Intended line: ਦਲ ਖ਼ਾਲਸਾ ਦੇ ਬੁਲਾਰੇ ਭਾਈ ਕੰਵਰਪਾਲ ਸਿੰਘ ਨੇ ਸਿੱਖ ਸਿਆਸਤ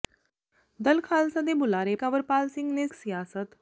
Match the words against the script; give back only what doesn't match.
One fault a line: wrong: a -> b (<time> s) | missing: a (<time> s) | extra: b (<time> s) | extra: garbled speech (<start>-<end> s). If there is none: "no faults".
missing: ਭਾਈ (1.9 s)
missing: ਸਿੱਖ (2.9 s)